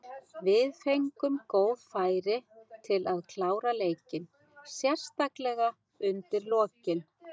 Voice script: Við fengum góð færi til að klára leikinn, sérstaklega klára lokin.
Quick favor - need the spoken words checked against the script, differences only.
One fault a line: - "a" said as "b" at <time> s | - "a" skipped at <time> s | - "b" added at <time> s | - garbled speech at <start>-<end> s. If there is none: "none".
- "klára" said as "undir" at 6.1 s